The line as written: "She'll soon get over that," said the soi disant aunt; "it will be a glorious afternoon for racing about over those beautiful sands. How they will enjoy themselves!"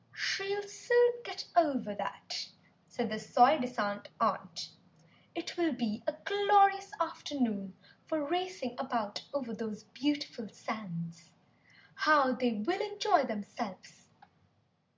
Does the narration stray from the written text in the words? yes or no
no